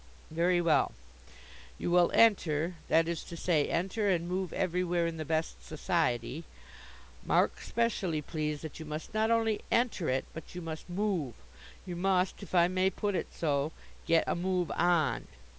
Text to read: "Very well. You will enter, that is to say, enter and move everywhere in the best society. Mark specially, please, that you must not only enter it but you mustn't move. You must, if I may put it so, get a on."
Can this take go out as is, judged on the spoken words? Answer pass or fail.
fail